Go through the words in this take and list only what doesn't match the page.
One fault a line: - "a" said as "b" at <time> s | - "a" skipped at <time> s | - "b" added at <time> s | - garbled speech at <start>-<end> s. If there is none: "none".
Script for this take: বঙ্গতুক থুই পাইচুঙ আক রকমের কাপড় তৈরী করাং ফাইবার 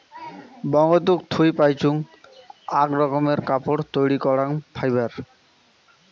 none